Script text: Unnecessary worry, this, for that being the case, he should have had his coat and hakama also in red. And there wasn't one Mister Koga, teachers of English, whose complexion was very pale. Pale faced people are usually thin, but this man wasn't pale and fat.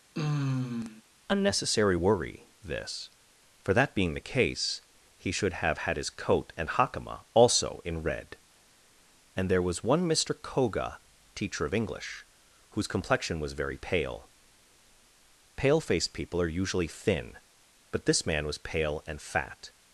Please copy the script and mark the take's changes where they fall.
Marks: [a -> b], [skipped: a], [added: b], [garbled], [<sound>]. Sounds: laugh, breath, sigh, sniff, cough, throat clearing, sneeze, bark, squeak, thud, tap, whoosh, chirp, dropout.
[sigh] Unnecessary worry, this, for that being the case, he should have had his coat and hakama also in red. And there [wasn't -> was] one Mister Koga, [teachers -> teacher] of English, whose complexion was very pale. Pale faced people are usually thin, but this man [wasn't -> was] pale and fat.